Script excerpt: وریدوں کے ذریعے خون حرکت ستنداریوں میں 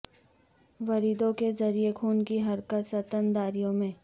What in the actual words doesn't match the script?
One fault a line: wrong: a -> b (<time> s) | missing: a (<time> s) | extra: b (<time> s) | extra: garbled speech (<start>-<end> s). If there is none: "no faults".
extra: کی (2.3 s)